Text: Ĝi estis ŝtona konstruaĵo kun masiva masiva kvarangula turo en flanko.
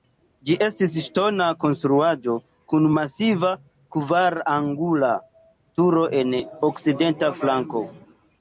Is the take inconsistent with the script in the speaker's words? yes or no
yes